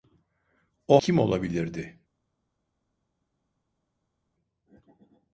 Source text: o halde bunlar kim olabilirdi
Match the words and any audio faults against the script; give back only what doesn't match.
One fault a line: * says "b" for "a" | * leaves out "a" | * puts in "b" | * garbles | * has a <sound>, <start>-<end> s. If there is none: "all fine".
* leaves out "halde bunlar"